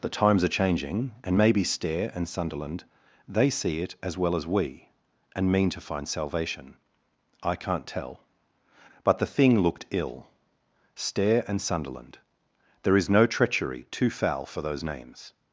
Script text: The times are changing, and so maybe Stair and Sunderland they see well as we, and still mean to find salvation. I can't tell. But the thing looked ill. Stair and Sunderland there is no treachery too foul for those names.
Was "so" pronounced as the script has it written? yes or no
no